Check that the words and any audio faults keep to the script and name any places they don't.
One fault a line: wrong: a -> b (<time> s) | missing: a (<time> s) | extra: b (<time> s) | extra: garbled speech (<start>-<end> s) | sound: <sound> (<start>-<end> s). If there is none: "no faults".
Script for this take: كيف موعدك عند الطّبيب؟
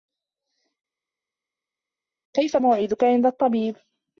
no faults